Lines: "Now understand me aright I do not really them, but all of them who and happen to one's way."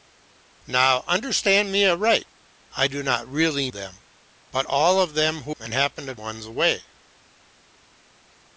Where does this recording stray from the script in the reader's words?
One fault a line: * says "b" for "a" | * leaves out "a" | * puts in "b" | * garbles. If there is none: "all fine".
all fine